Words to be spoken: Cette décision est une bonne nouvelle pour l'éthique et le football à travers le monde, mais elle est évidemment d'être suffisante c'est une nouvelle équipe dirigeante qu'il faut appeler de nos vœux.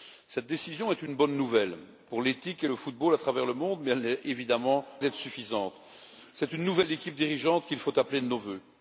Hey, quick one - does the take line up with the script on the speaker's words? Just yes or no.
yes